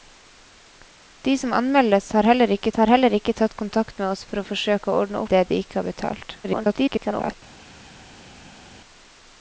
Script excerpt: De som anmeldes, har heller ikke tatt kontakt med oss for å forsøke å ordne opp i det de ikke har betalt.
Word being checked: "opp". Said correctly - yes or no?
no